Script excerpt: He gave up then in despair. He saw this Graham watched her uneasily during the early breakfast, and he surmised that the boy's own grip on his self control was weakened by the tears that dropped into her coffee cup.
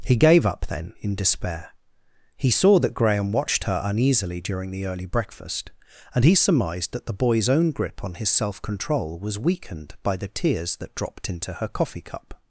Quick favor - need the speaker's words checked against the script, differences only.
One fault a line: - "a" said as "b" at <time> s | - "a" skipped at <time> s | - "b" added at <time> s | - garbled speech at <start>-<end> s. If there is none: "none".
- "this" said as "that" at 2.8 s